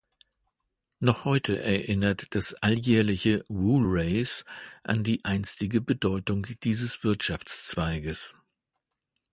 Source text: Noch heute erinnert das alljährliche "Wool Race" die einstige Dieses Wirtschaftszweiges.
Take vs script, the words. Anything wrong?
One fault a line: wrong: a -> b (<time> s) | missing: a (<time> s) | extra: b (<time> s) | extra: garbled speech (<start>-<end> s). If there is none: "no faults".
extra: an (4.8 s)
extra: Bedeutung (5.8 s)